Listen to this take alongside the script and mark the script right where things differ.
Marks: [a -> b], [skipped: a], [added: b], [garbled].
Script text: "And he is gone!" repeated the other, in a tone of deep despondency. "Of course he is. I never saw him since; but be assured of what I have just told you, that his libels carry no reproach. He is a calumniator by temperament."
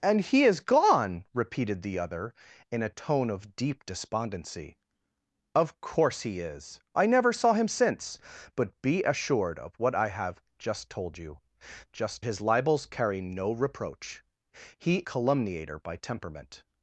"And he is gone!" repeated the other, in a tone of deep despondency. "Of course he is. I never saw him since; but be assured of what I have just told you, [that -> just] his libels carry no reproach. He [skipped: is a] calumniator by temperament."